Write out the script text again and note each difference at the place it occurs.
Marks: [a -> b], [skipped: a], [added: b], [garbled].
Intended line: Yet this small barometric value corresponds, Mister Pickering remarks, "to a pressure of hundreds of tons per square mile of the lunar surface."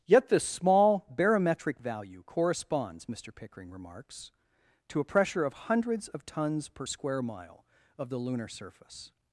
Yet this small barometric value corresponds, Mister Pickering remarks, "to a pressure of hundreds of tons per square mile of the lunar surface."